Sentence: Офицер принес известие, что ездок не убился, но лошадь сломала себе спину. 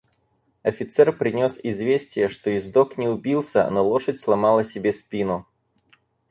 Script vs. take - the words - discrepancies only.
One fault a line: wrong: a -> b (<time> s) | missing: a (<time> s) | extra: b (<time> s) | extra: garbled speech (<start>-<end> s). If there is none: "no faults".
no faults